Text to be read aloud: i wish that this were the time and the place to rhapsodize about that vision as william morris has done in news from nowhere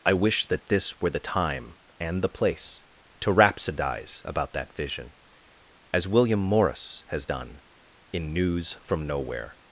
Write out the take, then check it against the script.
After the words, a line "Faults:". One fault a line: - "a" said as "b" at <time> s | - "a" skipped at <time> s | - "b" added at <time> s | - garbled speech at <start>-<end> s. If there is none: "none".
i wish that this were the time and the place to rhapsodize about that vision as william morris has done in news from nowhere
Faults:
none